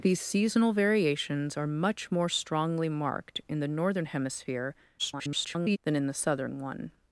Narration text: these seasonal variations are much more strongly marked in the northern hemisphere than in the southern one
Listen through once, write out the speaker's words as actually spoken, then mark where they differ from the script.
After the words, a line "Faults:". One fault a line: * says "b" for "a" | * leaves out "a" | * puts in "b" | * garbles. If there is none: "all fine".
these seasonal variations are much more strongly marked in the northern hemisphere [garbled] than in the southern one
Faults:
* garbles